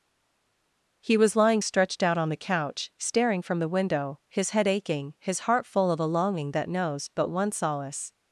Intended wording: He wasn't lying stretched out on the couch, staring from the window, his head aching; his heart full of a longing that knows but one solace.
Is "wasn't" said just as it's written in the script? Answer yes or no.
no